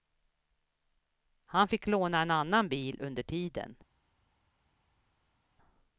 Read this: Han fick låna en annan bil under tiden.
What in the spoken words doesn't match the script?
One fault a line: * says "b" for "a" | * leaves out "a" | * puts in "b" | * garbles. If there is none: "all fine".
all fine